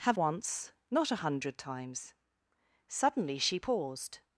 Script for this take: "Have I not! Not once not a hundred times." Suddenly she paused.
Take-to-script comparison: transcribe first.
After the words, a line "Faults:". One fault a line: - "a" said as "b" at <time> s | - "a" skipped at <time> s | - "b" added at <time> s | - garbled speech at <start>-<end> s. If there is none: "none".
"Have once not a hundred times." Suddenly she paused.
Faults:
- "I not Not" skipped at 0.2 s